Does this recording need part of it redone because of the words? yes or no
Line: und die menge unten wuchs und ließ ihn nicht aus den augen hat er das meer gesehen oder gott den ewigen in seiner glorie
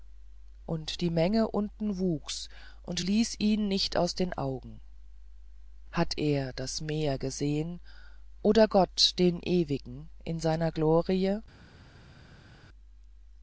no